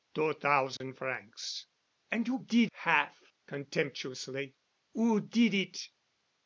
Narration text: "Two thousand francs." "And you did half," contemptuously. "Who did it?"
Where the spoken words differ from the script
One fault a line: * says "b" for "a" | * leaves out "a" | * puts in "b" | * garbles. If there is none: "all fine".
all fine